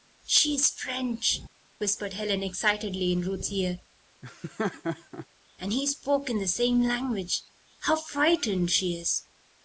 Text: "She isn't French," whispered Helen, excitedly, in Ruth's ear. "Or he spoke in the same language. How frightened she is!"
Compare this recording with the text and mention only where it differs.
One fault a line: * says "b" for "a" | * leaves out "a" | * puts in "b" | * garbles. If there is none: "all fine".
* says "is" for "isn't"
* says "And" for "Or"